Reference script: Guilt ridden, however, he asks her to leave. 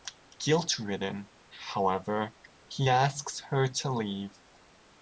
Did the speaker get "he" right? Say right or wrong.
right